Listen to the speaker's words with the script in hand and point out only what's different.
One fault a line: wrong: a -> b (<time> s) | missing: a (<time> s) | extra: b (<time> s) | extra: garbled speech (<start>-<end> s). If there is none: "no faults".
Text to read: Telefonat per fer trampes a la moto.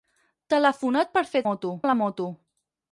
wrong: trampes -> moto (1.5 s)